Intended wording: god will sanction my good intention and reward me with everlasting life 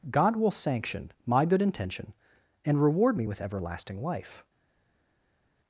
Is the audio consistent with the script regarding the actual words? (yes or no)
yes